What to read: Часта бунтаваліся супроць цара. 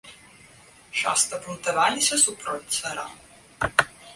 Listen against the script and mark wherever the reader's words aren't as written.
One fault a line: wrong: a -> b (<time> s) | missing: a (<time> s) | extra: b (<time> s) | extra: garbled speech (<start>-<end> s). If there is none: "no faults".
no faults